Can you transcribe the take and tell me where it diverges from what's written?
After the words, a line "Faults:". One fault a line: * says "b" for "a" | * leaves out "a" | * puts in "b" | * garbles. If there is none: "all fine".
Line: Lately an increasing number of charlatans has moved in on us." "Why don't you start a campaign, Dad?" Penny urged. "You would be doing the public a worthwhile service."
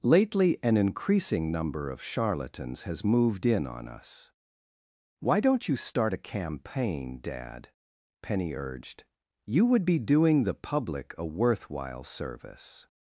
Lately an increasing number of charlatans has moved in on us." "Why don't you start a campaign, Dad?" Penny urged. "You would be doing the public a worthwhile service."
Faults:
all fine